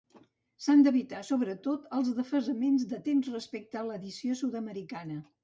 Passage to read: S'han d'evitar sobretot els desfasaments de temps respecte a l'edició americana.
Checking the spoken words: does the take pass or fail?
fail